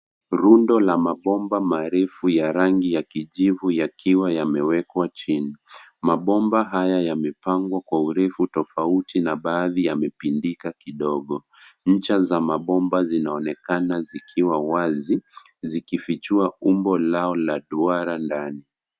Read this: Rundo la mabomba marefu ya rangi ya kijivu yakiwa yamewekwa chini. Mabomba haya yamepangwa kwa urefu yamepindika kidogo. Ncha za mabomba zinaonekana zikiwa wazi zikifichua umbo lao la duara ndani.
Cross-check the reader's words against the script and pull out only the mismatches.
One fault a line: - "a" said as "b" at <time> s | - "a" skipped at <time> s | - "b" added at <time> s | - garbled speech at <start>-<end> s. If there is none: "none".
- "tofauti na baadhi" added at 8.5 s